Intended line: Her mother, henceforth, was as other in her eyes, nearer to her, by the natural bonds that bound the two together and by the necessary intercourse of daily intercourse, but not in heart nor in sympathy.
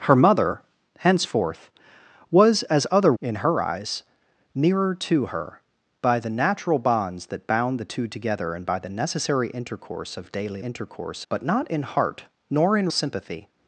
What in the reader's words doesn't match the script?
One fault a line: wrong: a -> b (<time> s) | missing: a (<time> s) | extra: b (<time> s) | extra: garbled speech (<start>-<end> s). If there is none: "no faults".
no faults